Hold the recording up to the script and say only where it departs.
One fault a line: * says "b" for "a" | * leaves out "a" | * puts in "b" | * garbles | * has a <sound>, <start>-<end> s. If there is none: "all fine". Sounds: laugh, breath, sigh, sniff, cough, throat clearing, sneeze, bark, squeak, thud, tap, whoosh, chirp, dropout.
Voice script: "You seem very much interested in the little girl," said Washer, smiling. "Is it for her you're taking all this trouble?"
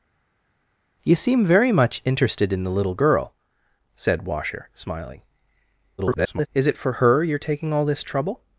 * garbles